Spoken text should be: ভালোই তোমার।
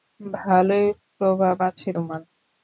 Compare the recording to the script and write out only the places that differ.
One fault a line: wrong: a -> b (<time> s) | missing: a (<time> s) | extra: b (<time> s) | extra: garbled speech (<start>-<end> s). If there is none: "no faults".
extra: প্রভাব আছে (1.1 s)